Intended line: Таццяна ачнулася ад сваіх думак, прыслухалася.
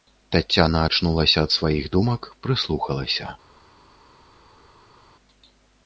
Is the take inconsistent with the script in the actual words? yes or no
no